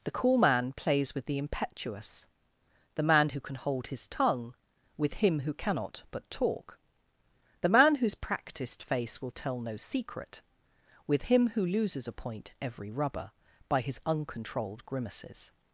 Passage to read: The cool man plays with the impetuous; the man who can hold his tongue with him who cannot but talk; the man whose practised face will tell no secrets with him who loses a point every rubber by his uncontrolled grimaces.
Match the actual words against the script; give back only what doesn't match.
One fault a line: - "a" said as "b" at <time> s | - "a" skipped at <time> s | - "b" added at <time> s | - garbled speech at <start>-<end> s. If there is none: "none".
- "secrets" said as "secret" at 9.8 s